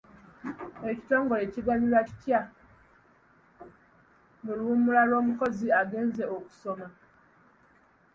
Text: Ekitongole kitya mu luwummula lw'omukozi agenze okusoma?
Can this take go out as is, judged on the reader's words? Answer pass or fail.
fail